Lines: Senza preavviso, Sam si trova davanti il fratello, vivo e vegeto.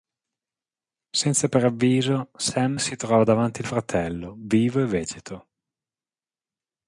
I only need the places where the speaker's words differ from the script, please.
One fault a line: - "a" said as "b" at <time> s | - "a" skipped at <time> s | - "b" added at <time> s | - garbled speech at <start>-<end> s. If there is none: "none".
none